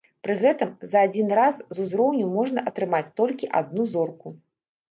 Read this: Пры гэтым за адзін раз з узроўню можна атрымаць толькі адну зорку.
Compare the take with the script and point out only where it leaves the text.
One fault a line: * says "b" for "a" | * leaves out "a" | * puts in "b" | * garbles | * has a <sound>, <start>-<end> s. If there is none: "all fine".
all fine